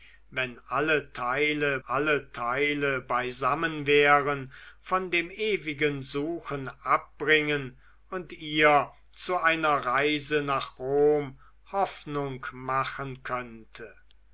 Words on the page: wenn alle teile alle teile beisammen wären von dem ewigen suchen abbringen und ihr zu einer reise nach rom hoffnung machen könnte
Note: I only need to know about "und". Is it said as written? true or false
true